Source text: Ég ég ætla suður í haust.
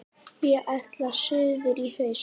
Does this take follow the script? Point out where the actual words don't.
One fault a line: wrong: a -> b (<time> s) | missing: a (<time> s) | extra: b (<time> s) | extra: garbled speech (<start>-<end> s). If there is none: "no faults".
missing: ég (0.7 s)